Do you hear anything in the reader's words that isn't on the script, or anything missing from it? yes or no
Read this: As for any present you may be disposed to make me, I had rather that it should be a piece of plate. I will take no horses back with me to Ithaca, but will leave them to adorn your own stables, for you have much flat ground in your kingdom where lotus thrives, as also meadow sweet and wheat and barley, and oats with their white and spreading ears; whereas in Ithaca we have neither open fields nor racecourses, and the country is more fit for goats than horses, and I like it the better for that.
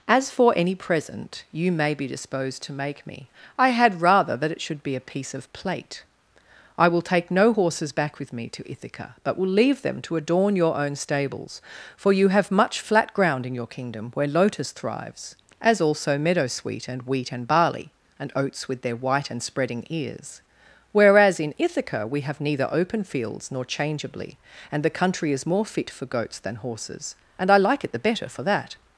yes